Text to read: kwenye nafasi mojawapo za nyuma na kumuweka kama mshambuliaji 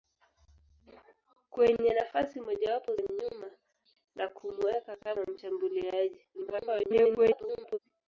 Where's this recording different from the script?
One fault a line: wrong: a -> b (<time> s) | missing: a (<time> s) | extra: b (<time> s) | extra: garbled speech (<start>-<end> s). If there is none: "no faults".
missing: za (3.0 s)
extra: garbled speech (6.3-7.8 s)